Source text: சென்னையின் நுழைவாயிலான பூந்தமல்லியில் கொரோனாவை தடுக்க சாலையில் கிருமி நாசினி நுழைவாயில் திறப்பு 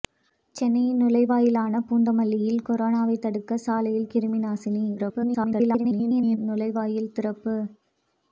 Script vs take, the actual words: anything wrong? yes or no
yes